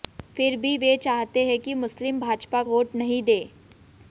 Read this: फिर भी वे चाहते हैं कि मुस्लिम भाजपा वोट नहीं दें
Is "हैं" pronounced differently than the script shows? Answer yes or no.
no